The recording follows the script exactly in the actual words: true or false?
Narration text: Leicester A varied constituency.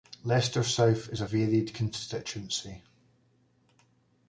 false